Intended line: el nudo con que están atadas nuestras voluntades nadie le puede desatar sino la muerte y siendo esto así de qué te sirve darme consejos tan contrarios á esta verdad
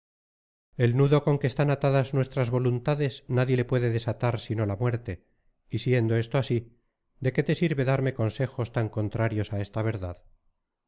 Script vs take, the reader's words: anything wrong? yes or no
no